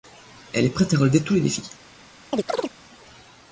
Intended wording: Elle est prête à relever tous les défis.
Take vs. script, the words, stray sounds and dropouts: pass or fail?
fail